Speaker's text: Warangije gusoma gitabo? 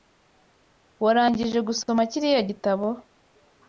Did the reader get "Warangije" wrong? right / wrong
right